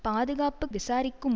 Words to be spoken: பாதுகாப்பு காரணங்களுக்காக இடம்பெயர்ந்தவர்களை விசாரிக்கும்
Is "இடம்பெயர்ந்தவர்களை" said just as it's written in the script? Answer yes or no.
no